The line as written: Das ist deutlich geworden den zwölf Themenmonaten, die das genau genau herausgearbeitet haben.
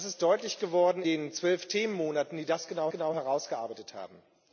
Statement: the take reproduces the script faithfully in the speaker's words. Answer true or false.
true